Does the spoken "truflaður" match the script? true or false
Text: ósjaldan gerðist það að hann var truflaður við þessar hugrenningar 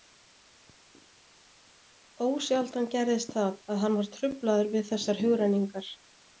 true